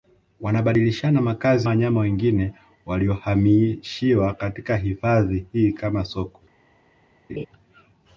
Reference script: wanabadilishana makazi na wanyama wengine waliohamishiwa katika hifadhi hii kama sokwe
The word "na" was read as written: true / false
false